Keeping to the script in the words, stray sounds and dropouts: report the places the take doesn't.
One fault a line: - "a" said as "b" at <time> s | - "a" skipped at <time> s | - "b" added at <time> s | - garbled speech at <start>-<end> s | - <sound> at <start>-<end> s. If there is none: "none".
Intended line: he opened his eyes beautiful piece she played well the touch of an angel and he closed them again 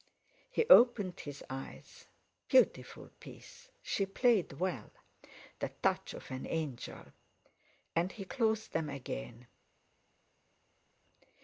none